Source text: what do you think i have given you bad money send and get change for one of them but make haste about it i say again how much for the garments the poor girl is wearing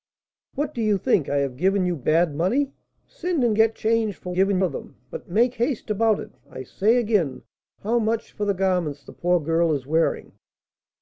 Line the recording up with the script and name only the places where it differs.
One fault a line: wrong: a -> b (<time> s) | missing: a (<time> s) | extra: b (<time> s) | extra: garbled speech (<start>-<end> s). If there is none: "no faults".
wrong: one -> given (4.3 s)